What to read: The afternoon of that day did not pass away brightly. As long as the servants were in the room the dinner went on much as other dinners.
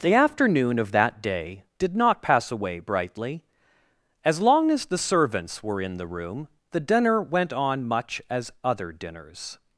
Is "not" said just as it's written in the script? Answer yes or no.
yes